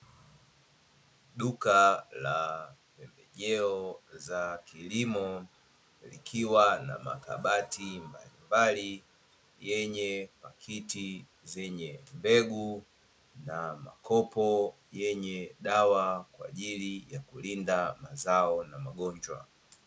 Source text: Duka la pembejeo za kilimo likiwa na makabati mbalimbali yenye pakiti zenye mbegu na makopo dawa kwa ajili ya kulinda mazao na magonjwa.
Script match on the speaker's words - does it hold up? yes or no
no